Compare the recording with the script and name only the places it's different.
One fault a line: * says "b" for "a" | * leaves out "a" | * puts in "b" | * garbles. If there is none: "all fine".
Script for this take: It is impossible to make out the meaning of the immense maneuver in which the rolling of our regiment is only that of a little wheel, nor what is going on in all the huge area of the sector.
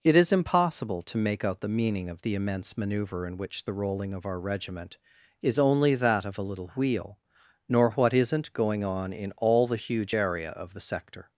* says "isn't" for "is"